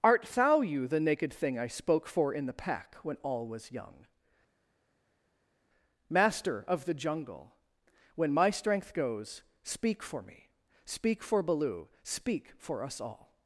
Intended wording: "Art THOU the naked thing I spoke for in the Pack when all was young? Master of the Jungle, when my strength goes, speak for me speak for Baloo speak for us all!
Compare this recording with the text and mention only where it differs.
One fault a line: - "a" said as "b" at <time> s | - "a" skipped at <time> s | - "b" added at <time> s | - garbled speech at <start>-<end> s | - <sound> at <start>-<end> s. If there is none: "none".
- "you" added at 0.6 s